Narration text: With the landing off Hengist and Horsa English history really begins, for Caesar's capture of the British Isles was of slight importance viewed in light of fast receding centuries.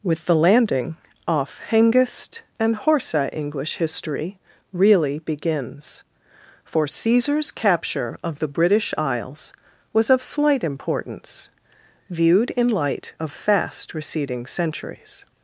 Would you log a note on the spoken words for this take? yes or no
no